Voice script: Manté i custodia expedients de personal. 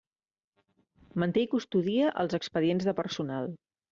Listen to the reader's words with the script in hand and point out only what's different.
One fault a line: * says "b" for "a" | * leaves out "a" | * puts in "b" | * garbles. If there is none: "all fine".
* puts in "els"